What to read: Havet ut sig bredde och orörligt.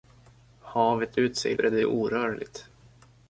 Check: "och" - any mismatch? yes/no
no